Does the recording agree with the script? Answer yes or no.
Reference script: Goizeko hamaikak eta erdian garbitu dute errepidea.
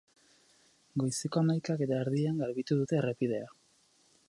yes